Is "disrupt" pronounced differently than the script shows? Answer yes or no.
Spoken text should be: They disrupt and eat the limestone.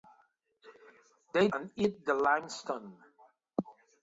yes